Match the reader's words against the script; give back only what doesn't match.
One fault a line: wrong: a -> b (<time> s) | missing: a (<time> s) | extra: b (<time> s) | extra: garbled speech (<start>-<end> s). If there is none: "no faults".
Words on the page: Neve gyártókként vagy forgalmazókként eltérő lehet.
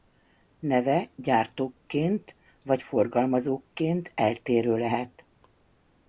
no faults